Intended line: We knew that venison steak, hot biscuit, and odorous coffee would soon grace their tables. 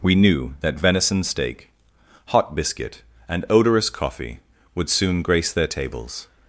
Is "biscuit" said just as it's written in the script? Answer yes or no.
yes